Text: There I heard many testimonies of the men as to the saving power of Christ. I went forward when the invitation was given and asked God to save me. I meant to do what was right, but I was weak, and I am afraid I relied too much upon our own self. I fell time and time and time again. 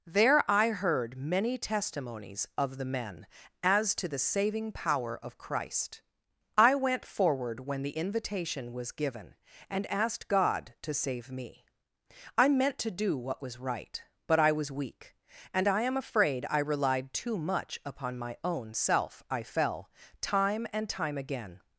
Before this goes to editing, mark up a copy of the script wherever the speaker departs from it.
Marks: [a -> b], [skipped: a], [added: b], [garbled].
There I heard many testimonies of the men as to the saving power of Christ. I went forward when the invitation was given and asked God to save me. I meant to do what was right, but I was weak, and I am afraid I relied too much upon [our -> my] own self. I fell time and time [skipped: and time] again.